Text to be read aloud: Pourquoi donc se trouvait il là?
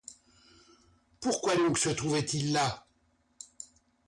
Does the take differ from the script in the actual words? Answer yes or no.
no